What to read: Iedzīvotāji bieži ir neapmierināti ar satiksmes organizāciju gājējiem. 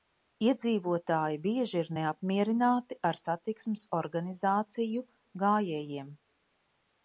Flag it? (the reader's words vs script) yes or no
no